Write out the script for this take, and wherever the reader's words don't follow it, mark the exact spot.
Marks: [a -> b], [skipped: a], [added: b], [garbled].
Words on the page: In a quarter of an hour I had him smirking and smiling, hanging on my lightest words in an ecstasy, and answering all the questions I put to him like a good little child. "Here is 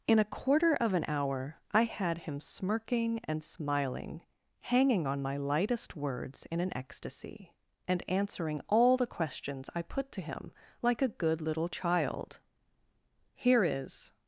In a quarter of an hour I had him smirking and smiling, hanging on my lightest words in an ecstasy, and answering all the questions I put to him like a good little child. "Here is